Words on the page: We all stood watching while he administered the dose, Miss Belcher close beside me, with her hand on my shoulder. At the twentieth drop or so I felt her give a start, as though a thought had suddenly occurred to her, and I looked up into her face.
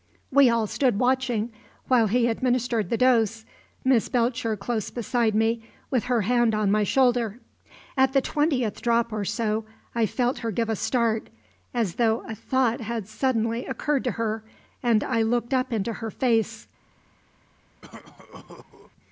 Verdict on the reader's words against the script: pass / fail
pass